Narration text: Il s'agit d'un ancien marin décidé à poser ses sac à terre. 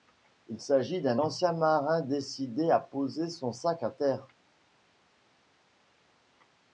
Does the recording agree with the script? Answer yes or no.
no